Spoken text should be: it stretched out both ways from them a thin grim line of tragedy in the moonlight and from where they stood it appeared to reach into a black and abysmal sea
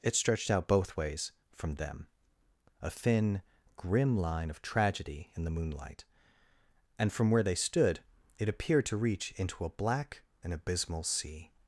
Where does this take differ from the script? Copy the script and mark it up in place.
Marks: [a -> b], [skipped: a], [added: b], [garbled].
it stretched out both ways from them a thin grim line of tragedy in the moonlight and from where they stood it appeared to reach into a black and abysmal sea